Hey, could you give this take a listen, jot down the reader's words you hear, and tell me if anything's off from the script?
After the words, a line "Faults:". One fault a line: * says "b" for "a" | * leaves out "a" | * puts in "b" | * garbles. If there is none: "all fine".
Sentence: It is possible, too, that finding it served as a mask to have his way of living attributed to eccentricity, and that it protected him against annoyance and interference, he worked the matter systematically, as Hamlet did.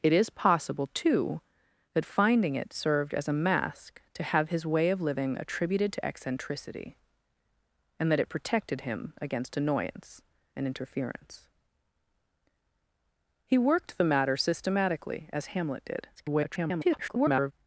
It is possible, too, that finding it served as a mask to have his way of living attributed to eccentricity, and that it protected him against annoyance and interference, he worked the matter systematically, as Hamlet did. [garbled]
Faults:
* garbles